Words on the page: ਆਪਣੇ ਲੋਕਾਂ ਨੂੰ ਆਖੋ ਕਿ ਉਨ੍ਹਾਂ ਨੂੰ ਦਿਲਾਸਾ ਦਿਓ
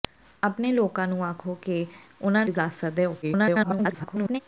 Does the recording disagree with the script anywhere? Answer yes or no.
yes